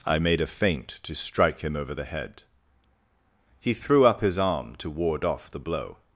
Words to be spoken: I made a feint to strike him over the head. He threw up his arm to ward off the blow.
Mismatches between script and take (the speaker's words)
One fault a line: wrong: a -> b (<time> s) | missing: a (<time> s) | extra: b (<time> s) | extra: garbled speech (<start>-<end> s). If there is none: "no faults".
no faults